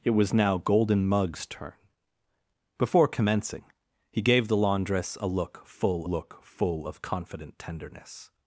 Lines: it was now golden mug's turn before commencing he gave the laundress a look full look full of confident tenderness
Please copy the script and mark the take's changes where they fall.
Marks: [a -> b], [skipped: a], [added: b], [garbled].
it was now golden mug's turn before commencing he gave the laundress a look full look full of confident tenderness